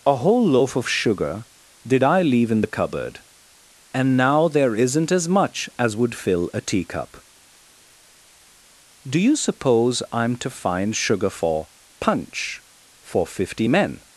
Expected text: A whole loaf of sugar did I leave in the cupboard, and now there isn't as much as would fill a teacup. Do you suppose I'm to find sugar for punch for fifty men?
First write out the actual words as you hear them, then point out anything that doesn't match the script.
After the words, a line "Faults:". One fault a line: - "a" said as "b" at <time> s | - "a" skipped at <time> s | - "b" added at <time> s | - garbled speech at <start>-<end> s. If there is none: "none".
A whole loaf of sugar did I leave in the cupboard, and now there isn't as much as would fill a teacup. Do you suppose I'm to find sugar for punch for fifty men?
Faults:
none